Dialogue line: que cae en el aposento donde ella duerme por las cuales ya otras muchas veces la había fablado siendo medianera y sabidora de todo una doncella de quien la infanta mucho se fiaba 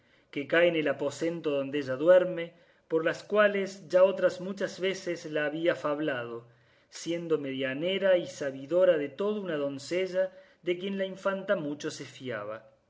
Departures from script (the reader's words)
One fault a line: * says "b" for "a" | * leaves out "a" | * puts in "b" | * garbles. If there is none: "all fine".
all fine